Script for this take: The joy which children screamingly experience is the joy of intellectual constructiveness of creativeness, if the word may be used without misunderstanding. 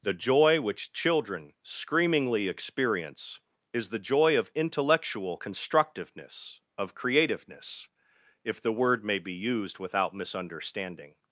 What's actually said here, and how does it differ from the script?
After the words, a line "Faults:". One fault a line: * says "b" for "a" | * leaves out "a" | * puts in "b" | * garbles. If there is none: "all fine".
The joy which children screamingly experience is the joy of intellectual constructiveness of creativeness, if the word may be used without misunderstanding.
Faults:
all fine